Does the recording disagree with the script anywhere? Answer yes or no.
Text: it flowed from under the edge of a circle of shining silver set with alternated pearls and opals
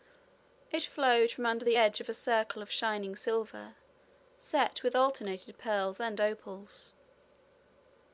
no